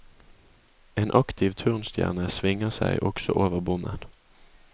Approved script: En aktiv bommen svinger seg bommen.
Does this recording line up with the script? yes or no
no